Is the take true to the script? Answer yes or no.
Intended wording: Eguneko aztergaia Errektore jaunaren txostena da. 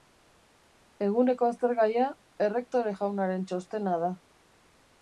yes